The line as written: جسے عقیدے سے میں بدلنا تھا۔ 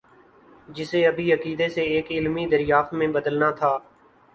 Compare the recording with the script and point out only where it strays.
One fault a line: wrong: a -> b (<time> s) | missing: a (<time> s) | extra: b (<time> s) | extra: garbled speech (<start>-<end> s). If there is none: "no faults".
extra: ابھی (1.1 s)
extra: ایک علمی دریافت (1.8 s)